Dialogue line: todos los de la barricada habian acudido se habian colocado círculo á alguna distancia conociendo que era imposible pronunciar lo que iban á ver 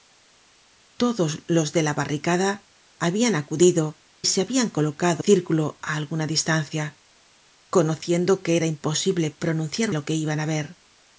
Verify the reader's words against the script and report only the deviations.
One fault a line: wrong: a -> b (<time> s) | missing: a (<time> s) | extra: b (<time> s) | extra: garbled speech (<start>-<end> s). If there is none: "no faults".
no faults